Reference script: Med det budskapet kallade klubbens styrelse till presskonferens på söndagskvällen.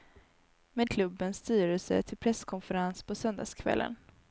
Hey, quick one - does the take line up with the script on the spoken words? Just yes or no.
no